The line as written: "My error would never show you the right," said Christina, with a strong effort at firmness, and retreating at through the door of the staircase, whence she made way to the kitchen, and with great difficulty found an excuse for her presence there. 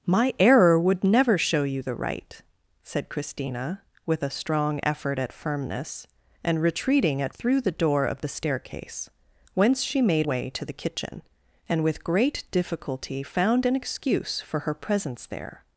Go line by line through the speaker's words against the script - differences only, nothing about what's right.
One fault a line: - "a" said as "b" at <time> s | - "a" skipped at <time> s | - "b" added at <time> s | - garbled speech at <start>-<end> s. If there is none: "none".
none